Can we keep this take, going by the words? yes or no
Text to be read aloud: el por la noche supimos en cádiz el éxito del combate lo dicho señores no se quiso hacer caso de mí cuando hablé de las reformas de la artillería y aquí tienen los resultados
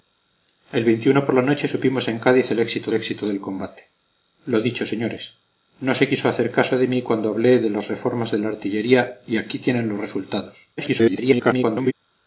no